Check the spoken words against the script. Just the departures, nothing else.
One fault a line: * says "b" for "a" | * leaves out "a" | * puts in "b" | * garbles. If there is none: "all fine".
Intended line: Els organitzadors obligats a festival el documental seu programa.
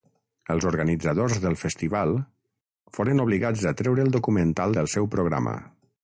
* puts in "del festival foren"
* says "treure" for "festival"
* puts in "del"